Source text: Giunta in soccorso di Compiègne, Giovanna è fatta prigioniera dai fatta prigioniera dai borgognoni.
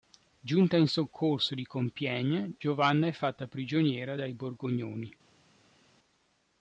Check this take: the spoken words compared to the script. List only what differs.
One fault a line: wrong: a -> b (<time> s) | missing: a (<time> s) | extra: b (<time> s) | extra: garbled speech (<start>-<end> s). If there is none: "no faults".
missing: fatta prigioniera dai (4.3 s)